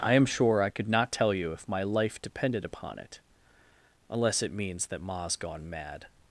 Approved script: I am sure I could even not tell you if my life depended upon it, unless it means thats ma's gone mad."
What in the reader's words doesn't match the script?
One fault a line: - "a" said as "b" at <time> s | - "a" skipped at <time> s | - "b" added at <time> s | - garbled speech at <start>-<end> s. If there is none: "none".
- "even" skipped at 0.9 s
- "thats" said as "that" at 4.9 s